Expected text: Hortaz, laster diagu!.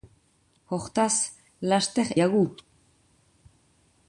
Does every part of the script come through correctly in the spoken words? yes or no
yes